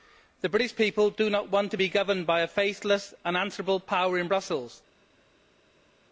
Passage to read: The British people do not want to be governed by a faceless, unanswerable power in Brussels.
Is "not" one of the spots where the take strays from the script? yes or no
no